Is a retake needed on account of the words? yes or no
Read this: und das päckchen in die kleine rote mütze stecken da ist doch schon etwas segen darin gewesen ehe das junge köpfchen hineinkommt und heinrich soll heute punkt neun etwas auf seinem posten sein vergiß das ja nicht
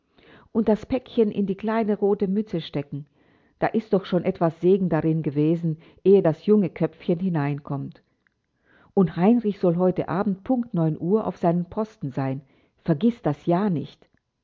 yes